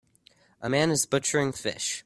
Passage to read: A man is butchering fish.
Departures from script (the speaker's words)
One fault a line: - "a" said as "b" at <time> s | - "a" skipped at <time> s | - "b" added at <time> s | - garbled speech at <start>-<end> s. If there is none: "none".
none